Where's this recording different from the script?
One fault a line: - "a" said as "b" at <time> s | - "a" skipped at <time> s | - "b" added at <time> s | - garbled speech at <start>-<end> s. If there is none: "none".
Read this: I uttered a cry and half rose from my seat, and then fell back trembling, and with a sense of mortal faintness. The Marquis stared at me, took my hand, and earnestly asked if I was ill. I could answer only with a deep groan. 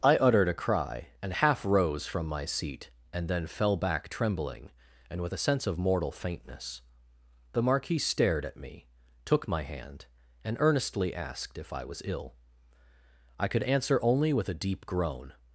none